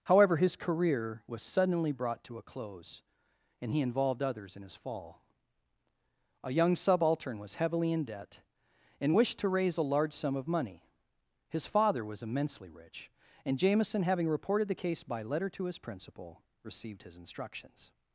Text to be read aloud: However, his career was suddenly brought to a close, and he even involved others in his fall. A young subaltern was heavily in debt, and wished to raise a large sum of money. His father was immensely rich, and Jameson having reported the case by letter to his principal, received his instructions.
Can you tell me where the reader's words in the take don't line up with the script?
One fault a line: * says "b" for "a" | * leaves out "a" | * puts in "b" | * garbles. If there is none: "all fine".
* leaves out "even"